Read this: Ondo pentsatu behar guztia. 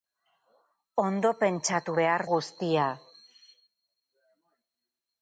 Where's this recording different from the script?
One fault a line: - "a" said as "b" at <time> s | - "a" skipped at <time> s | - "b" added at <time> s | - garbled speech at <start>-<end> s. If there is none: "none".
none